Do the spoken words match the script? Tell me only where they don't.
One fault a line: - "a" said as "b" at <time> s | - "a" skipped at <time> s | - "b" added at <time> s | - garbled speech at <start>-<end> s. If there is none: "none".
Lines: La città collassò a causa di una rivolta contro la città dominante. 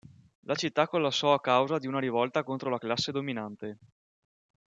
- "città" said as "classe" at 2.8 s